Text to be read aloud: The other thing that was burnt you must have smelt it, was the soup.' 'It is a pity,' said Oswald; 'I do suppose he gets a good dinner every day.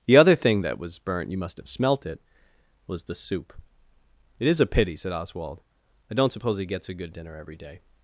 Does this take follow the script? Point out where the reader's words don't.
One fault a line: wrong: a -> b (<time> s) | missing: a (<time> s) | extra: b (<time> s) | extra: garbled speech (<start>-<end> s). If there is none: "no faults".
wrong: do -> don't (6.2 s)